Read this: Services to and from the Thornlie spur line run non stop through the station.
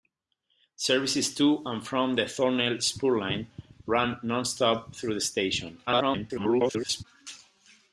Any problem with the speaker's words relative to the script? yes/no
yes